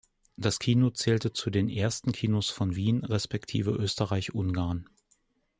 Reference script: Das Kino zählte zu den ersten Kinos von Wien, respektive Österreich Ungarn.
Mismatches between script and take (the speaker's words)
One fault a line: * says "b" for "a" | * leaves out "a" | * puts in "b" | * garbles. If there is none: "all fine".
all fine